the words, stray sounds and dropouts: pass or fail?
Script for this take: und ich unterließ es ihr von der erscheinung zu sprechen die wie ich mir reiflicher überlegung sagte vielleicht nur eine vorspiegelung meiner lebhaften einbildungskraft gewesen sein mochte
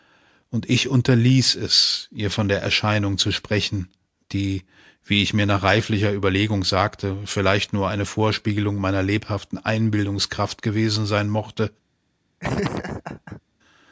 fail